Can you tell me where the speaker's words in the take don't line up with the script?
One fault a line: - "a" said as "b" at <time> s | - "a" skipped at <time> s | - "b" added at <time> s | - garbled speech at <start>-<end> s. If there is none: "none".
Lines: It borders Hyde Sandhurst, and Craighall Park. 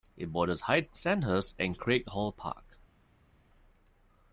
none